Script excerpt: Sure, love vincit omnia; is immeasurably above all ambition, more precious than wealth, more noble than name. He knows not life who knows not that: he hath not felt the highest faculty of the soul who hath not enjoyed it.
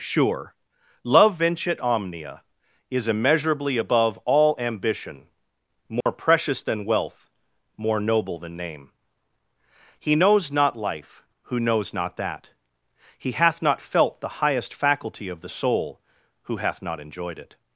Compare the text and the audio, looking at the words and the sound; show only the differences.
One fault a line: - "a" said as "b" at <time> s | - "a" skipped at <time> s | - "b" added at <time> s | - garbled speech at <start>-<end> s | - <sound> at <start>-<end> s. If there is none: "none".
- dropout at 6.0-6.1 s